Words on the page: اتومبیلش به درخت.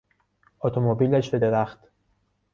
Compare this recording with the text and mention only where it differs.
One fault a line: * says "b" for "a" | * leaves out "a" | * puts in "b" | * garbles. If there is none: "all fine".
all fine